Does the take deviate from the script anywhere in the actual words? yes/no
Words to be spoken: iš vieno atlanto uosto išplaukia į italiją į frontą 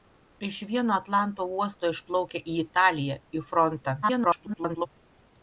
yes